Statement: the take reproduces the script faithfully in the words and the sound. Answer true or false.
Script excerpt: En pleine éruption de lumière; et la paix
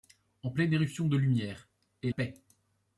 false